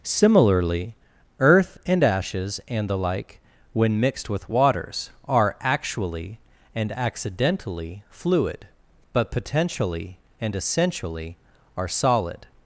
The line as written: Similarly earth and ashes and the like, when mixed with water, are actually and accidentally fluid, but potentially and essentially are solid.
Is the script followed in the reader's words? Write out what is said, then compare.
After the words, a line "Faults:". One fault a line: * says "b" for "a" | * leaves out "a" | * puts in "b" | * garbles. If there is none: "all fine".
Similarly earth and ashes and the like, when mixed with waters, are actually and accidentally fluid, but potentially and essentially are solid.
Faults:
* says "waters" for "water"